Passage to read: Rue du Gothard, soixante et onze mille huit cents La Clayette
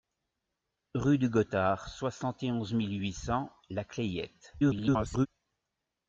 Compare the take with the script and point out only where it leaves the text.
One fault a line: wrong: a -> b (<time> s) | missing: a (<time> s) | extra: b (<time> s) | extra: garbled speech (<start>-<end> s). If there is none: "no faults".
extra: garbled speech (4.6-5.3 s)